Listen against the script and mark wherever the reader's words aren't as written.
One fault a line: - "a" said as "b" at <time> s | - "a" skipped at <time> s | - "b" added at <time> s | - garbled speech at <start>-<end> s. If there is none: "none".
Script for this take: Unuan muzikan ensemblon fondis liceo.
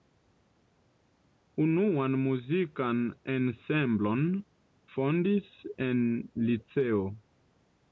- "en" added at 5.9 s